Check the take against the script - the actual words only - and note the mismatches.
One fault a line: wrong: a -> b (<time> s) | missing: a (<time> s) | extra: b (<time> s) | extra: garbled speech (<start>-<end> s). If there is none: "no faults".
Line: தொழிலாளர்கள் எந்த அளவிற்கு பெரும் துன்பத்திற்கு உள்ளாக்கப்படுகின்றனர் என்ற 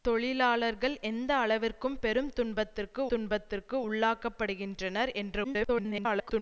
extra: துன்பத்திற்கு (3.1 s)
extra: garbled speech (5.4-6.4 s)